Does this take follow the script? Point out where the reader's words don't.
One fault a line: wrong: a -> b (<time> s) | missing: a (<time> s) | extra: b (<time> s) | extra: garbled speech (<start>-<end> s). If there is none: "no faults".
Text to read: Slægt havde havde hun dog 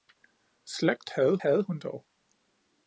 no faults